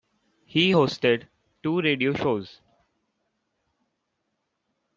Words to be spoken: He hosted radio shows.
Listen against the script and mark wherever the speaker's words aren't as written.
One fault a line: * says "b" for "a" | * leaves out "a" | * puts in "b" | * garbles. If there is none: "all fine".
* puts in "two"